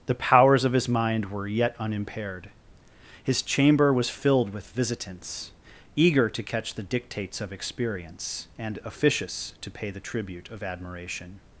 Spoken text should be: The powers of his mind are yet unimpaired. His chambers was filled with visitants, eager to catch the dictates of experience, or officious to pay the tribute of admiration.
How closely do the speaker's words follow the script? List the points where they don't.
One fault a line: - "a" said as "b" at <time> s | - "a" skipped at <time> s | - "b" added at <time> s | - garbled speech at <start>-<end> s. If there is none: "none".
- "are" said as "were" at 1.3 s
- "chambers" said as "chamber" at 3.4 s
- "or" said as "and" at 8.6 s